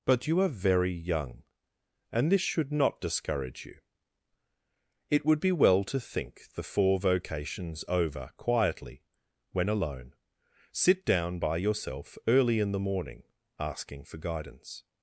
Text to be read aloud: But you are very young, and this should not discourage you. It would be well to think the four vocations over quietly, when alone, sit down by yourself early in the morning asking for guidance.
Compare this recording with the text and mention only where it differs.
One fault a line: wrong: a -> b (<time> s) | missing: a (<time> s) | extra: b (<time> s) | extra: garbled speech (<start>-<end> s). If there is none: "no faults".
no faults